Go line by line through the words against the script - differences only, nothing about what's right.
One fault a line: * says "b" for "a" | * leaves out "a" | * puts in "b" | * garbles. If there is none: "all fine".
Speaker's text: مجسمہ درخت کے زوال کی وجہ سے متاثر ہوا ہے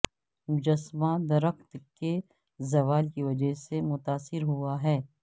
all fine